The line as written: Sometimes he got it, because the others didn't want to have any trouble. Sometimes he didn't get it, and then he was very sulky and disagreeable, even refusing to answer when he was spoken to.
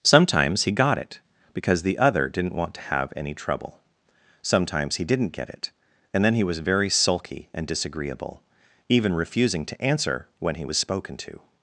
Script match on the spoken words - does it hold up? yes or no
no